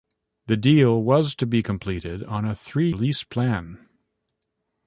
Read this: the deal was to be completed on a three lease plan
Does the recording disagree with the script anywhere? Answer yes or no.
no